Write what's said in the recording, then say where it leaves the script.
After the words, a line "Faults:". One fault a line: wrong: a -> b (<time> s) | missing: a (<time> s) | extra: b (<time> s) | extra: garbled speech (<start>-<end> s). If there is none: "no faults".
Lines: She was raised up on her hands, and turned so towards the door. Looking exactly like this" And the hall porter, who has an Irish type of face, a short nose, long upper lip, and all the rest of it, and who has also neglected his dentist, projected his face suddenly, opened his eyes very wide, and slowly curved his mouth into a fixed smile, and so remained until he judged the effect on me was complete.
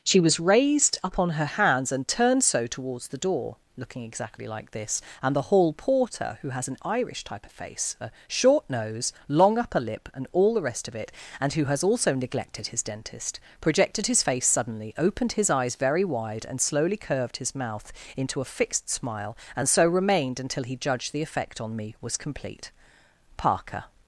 She was raised up on her hands, and turned so towards the door. Looking exactly like this" And the hall porter, who has an Irish type of face, a short nose, long upper lip, and all the rest of it, and who has also neglected his dentist, projected his face suddenly, opened his eyes very wide, and slowly curved his mouth into a fixed smile, and so remained until he judged the effect on me was complete. Parker
Faults:
extra: Parker (23.4 s)